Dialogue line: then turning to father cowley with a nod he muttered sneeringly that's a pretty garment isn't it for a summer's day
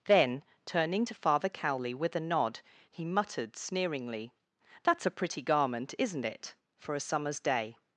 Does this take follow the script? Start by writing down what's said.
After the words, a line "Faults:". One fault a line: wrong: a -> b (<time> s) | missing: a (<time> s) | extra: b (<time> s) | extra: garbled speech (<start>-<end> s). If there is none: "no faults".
then turning to father cowley with a nod he muttered sneeringly that's a pretty garment isn't it for a summer's day
Faults:
no faults